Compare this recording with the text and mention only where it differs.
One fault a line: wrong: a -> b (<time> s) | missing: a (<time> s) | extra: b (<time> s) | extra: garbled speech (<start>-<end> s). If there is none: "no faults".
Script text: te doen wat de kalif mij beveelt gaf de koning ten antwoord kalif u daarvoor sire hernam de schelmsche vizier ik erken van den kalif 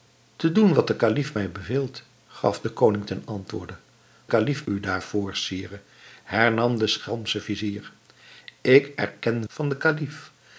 no faults